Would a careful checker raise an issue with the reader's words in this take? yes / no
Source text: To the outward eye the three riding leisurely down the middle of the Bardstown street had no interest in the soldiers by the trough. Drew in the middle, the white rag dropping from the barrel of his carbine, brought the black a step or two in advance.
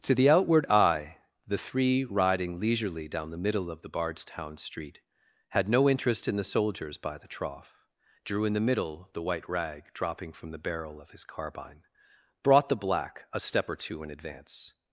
no